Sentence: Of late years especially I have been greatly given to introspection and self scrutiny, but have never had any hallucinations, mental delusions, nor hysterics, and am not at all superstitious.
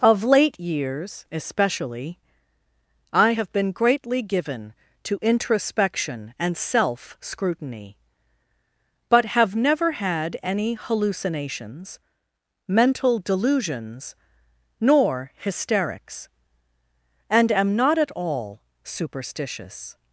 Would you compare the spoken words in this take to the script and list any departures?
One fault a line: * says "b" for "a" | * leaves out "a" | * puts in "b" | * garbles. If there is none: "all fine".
all fine